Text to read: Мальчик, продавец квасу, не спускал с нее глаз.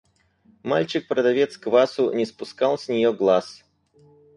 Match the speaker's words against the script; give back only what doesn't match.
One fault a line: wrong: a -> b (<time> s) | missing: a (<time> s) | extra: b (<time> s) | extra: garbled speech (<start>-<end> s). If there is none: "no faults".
no faults